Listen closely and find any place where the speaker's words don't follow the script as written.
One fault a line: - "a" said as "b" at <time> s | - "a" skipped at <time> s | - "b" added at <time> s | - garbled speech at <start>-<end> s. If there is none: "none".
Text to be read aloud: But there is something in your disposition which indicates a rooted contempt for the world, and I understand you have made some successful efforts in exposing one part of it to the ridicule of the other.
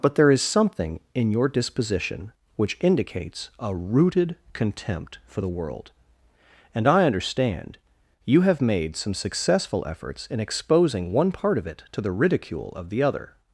none